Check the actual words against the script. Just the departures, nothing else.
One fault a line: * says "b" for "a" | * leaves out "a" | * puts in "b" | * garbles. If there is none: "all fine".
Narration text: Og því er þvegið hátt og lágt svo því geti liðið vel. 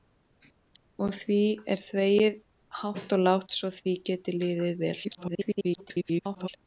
* garbles